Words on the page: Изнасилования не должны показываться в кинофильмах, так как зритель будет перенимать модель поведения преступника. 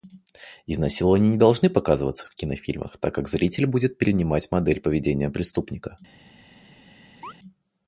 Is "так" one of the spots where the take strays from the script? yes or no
no